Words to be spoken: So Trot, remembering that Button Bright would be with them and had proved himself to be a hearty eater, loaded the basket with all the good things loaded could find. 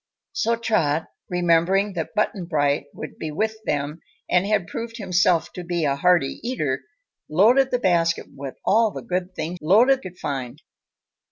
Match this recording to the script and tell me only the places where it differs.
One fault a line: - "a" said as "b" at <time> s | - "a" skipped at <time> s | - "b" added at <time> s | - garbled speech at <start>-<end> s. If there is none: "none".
none